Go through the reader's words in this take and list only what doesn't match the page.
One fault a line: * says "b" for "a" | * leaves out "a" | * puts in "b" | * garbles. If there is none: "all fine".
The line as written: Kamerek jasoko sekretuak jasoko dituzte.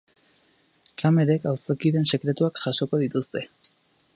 * says "auzokideen" for "jasoko"